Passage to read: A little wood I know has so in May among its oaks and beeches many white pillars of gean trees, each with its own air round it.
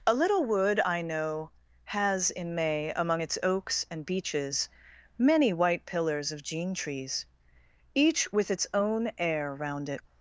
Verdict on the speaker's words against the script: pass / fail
fail